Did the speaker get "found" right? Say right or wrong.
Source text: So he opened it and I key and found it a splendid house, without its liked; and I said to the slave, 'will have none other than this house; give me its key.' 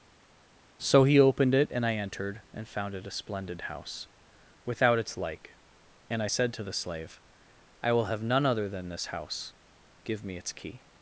right